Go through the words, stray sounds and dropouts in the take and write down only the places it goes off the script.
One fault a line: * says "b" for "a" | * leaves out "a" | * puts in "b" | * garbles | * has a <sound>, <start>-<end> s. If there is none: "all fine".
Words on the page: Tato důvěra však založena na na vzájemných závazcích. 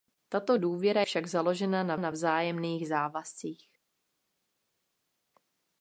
all fine